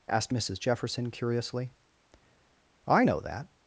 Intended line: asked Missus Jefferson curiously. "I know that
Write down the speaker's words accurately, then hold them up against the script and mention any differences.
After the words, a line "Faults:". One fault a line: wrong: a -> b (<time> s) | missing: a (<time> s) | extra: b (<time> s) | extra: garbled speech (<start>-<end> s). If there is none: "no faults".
asked Missus Jefferson curiously. "I know that
Faults:
no faults